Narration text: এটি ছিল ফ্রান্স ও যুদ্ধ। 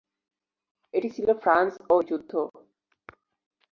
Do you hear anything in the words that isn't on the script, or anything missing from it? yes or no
no